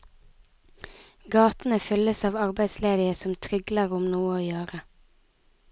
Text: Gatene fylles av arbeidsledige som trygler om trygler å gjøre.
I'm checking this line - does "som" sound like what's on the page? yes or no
yes